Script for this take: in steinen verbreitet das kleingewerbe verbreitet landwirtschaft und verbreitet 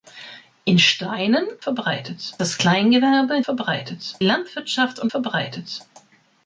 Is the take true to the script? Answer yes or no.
yes